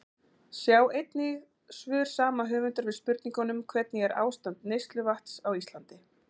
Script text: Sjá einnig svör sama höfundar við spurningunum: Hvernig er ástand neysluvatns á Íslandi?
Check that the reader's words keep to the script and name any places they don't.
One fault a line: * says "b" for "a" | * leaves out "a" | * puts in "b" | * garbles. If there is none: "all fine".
all fine